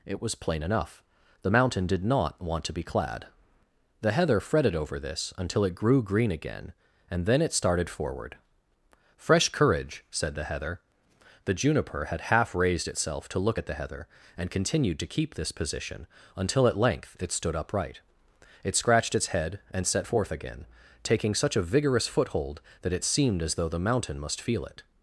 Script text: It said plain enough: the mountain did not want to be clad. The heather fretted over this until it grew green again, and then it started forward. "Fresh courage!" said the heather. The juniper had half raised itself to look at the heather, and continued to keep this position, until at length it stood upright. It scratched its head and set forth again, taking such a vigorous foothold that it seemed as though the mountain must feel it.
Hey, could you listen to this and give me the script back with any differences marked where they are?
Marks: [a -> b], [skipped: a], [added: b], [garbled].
It [said -> was] plain enough: the mountain did not want to be clad. The heather fretted over this until it grew green again, and then it started forward. "Fresh courage!" said the heather. The juniper had half raised itself to look at the heather, and continued to keep this position, until at length it stood upright. It scratched its head and set forth again, taking such a vigorous foothold that it seemed as though the mountain must feel it.